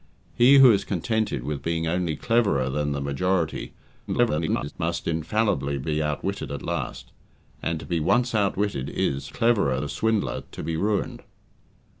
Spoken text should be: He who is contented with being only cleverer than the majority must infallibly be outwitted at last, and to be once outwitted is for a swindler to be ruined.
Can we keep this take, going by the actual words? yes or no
no